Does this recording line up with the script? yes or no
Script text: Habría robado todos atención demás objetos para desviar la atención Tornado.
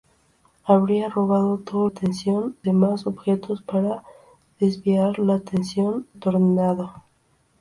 yes